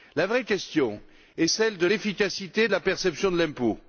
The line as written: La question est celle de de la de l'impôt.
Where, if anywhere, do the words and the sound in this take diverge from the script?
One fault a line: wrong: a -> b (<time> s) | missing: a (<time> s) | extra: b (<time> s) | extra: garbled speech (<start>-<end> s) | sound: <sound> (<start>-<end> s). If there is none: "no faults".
extra: vraie (0.3 s)
extra: l'efficacité (1.8 s)
extra: perception (2.8 s)